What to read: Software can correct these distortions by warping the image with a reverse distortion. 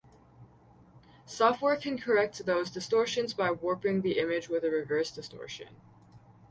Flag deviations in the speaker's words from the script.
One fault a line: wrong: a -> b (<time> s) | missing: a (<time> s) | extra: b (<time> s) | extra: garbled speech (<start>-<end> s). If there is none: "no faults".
wrong: these -> those (2.5 s)